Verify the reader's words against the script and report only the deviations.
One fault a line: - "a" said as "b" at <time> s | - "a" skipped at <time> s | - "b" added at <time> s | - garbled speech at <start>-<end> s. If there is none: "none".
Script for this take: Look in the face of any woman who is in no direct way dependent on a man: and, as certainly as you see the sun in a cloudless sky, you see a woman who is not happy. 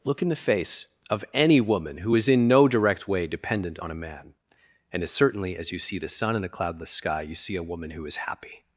- "not" skipped at 8.2 s